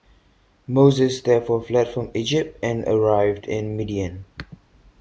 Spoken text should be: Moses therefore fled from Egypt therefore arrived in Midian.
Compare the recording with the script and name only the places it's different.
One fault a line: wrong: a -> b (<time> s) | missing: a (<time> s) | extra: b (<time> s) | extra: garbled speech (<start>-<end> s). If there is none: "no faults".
wrong: therefore -> and (2.6 s)